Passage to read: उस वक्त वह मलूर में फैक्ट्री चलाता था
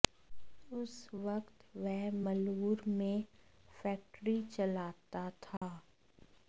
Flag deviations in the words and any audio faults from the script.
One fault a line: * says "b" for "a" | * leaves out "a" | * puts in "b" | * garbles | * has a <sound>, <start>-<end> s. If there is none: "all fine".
* has a dropout, 5.6-5.6 s